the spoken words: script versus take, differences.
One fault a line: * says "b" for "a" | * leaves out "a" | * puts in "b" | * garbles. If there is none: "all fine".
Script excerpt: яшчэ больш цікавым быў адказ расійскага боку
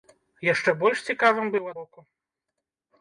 * leaves out "адказ расійскага"